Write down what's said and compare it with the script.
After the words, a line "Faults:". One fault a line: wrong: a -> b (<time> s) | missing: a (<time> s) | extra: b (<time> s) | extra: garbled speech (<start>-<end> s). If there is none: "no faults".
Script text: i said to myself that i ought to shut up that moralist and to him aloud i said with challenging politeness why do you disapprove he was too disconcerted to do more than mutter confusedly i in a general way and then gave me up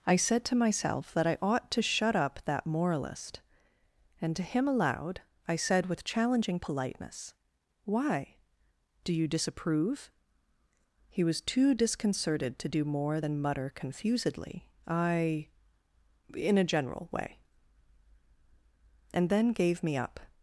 i said to myself that i ought to shut up that moralist and to him aloud i said with challenging politeness why do you disapprove he was too disconcerted to do more than mutter confusedly i in a general way and then gave me up
Faults:
no faults